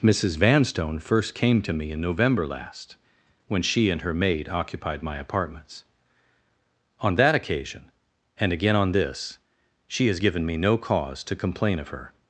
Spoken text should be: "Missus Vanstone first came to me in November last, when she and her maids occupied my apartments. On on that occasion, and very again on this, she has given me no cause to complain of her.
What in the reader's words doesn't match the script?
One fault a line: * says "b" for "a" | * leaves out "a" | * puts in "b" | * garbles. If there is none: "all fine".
* says "maid" for "maids"
* leaves out "on"
* leaves out "very"